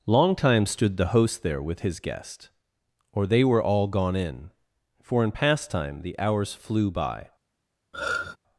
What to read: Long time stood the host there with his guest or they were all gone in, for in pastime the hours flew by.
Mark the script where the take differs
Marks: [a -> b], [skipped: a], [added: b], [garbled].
Long time stood the host there with his guest or they were all gone in, for in pastime the hours flew by.